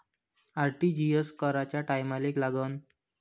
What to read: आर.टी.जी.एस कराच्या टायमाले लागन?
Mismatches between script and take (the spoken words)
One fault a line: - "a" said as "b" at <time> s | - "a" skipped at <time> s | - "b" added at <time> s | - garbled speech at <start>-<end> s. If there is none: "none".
none